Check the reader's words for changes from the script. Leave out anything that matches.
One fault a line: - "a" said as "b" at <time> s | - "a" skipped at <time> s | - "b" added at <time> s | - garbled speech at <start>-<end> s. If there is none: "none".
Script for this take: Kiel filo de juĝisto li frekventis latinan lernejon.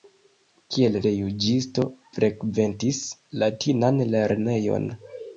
- "filo" skipped at 0.9 s
- "li" skipped at 1.9 s